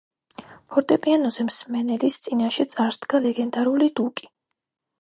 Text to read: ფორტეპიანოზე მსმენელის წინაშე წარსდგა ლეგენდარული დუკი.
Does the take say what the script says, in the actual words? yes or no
yes